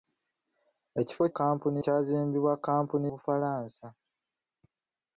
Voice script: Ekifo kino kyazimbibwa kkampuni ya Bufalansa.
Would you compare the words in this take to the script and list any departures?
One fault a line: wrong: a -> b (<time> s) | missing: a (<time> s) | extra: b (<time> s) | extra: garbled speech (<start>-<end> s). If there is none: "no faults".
wrong: kino -> kkampuni (1.3 s)
missing: ya (3.1 s)